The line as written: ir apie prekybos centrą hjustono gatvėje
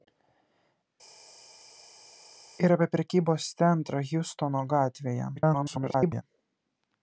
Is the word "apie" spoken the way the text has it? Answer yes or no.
yes